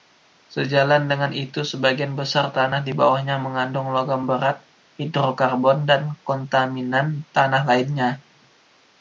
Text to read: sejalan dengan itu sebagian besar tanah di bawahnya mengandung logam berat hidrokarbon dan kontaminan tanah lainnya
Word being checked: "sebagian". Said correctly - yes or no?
yes